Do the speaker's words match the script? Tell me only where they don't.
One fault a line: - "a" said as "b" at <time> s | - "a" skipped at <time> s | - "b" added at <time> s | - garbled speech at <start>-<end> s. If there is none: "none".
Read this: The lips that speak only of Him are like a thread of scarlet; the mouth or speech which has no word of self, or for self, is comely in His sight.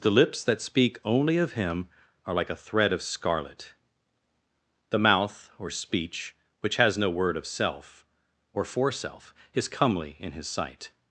none